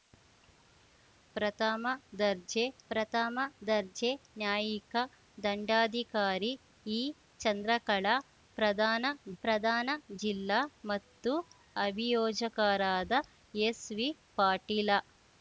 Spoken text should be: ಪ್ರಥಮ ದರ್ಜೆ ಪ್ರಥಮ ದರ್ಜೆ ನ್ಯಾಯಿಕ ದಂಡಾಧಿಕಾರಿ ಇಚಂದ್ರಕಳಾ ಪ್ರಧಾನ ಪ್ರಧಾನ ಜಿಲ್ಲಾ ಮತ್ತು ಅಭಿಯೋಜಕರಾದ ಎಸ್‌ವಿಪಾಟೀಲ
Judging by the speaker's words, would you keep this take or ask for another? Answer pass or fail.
pass